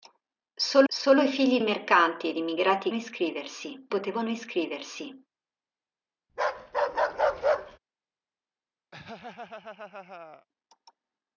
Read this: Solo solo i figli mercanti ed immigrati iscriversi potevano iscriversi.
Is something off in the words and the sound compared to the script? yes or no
yes